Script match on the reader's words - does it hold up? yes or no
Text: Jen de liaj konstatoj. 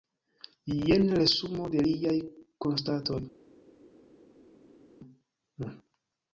no